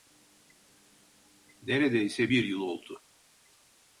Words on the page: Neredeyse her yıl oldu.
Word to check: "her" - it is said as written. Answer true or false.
false